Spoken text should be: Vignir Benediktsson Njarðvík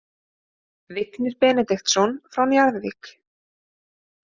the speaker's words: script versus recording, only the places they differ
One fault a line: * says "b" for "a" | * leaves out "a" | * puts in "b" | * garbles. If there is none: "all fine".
* puts in "frá"